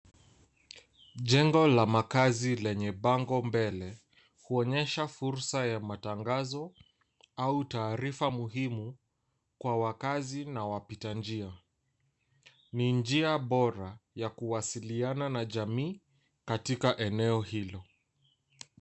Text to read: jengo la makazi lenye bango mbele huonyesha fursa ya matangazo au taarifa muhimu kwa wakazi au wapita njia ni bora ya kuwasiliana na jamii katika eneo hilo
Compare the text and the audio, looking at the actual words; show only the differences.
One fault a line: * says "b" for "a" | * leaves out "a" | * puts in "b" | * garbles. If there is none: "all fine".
* says "na" for "au"
* puts in "njia"